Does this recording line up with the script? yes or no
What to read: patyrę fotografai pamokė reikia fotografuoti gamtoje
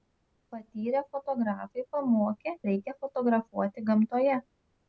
yes